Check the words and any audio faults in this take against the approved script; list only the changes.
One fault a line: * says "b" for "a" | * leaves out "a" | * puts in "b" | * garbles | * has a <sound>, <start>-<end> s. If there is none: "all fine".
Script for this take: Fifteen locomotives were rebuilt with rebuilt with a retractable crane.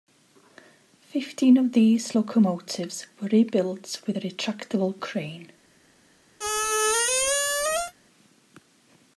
* puts in "of these"
* leaves out "rebuilt with"
* has a squeak, 6.4-7.9 s